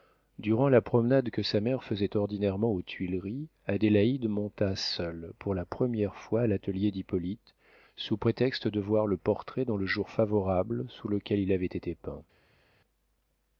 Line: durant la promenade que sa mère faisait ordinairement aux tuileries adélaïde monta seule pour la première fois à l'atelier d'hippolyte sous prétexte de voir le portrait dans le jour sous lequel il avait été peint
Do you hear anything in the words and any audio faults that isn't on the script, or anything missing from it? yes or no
yes